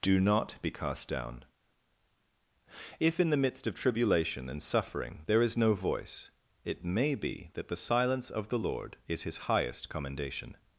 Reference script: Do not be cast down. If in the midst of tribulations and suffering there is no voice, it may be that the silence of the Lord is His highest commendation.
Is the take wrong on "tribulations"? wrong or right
wrong